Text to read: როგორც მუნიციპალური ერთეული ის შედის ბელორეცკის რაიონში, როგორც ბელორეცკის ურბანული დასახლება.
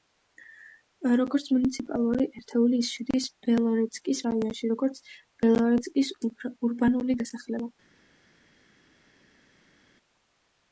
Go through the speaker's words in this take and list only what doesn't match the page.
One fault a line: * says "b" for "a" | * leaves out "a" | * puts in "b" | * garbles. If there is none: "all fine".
all fine